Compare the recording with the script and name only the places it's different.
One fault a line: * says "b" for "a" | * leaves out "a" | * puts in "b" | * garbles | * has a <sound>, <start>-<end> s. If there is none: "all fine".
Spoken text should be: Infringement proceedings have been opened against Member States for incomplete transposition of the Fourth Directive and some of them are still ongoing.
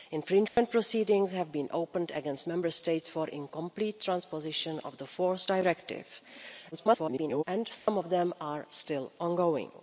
* has a dropout, 0.5-0.6 s
* garbles
* has a dropout, 7.8-7.9 s